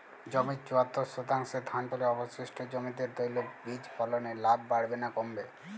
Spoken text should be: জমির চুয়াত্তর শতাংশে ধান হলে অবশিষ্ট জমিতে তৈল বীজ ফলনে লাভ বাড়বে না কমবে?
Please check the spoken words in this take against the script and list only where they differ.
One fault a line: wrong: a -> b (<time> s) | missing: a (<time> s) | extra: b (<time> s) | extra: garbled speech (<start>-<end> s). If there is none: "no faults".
no faults